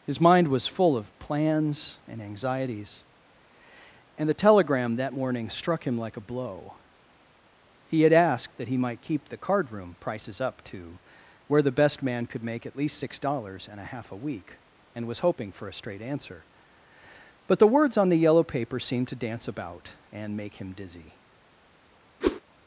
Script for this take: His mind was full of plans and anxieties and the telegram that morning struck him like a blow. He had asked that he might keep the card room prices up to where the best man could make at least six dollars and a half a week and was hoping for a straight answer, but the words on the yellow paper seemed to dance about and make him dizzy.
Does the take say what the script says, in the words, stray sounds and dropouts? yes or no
no